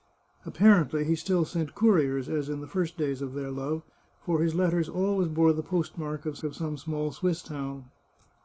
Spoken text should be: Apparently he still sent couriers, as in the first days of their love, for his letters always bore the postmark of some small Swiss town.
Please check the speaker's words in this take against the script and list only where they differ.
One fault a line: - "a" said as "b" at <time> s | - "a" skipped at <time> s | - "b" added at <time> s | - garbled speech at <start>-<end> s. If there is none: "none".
- "of" added at 6.4 s